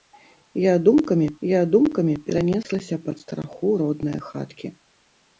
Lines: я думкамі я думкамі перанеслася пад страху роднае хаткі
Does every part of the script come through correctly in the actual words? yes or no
yes